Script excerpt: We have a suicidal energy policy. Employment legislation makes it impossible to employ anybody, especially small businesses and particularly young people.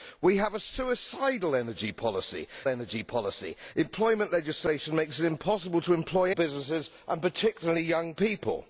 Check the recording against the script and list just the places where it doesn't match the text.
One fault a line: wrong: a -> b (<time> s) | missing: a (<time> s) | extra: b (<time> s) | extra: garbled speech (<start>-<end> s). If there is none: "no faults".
extra: energy policy (2.7 s)
missing: anybody especially small (6.3 s)